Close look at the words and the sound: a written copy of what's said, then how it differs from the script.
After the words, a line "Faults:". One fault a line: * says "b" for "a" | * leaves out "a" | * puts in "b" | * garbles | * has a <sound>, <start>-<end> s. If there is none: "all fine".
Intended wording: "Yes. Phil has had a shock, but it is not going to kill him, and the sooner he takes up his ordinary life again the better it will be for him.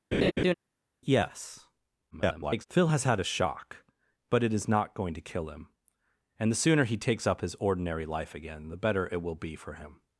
"Yes. [garbled] Phil has had a shock, but it is not going to kill him, and the sooner he takes up his ordinary life again the better it will be for him.
Faults:
* has a laugh, 0.1-0.5 s
* garbles